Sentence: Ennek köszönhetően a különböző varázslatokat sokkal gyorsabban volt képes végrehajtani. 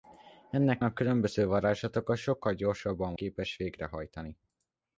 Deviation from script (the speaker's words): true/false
true